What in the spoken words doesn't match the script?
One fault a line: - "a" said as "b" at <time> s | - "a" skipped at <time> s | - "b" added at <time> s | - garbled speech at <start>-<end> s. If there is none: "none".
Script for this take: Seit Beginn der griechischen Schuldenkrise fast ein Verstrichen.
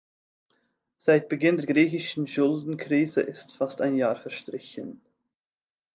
- "ist" added at 3.2 s
- "Jahr" added at 4.0 s